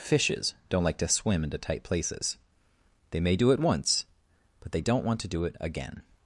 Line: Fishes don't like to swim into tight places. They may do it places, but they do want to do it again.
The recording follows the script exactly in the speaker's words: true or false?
false